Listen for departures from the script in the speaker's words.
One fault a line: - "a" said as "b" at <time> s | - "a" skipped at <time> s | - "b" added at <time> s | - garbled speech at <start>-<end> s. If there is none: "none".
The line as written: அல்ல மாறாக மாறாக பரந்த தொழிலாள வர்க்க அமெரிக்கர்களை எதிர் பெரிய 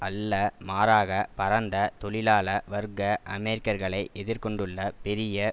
- "மாறாக" skipped at 1.1 s
- "கொண்டுள்ள" added at 4.4 s